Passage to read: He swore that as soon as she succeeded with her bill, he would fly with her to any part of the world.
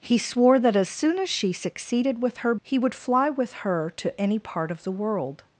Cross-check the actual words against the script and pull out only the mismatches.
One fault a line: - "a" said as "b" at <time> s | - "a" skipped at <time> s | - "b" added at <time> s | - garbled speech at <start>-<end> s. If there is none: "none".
- "bill" skipped at 2.5 s